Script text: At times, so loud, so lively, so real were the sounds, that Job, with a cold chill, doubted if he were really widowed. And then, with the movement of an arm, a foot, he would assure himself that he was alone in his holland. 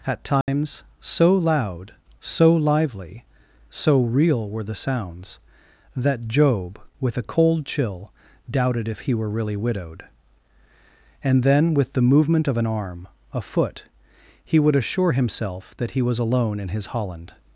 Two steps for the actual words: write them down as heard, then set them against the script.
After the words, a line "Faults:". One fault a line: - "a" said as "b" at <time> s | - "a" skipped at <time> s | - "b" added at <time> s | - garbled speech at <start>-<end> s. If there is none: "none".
At times, so loud, so lively, so real were the sounds, that Job, with a cold chill, doubted if he were really widowed. And then, with the movement of an arm, a foot, he would assure himself that he was alone in his holland.
Faults:
none